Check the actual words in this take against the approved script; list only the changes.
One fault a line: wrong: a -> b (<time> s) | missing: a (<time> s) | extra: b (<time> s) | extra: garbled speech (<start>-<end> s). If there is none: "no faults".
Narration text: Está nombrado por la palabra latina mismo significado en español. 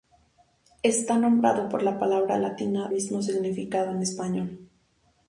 no faults